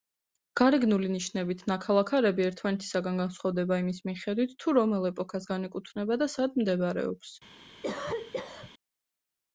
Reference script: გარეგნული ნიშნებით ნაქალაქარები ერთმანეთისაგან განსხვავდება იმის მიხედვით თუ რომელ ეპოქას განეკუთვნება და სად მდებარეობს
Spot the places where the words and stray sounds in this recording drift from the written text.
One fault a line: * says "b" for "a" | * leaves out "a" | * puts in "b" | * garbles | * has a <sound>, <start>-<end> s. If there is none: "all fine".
* has a cough, 7.8-8.7 s